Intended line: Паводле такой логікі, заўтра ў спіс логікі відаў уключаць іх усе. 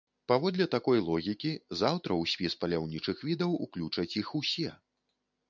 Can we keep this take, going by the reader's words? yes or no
no